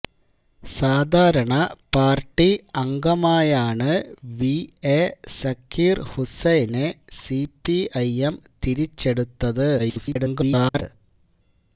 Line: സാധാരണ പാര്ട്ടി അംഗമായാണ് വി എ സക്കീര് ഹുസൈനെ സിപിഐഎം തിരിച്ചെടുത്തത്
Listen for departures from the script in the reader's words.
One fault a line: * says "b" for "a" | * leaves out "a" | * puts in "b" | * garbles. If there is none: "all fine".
* garbles